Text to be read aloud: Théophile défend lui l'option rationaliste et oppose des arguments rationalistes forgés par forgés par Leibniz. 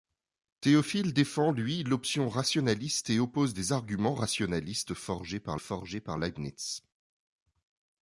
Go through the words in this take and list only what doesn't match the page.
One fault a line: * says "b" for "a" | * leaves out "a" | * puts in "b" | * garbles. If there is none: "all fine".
all fine